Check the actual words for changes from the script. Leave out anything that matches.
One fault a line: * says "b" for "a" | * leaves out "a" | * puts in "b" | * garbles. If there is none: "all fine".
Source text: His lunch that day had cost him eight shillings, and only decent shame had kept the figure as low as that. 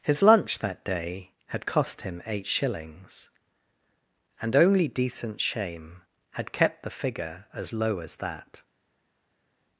all fine